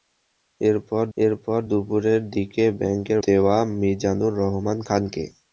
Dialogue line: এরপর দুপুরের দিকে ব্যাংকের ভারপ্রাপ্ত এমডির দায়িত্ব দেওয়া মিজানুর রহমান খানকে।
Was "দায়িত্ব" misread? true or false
true